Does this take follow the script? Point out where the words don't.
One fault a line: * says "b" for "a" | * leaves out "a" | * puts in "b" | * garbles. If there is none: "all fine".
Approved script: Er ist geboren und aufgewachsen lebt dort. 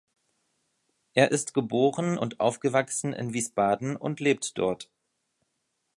* puts in "in Wiesbaden und"